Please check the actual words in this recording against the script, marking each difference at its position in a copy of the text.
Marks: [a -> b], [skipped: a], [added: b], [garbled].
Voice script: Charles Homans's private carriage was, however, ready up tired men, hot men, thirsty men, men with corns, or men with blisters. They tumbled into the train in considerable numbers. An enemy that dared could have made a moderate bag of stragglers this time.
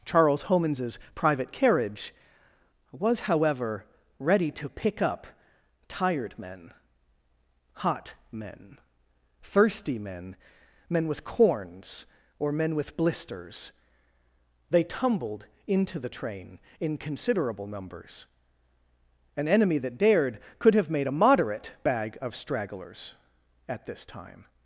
Charles Homans's private carriage was, however, ready [added: to pick] up tired men, hot men, thirsty men, men with corns, or men with blisters. They tumbled into the train in considerable numbers. An enemy that dared could have made a moderate bag of stragglers [added: at] this time.